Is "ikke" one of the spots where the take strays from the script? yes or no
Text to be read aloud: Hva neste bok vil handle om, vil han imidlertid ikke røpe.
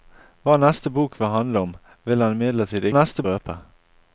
yes